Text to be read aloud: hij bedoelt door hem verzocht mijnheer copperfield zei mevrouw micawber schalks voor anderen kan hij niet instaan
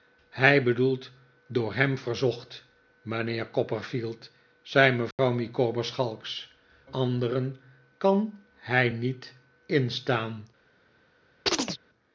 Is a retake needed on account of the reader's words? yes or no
yes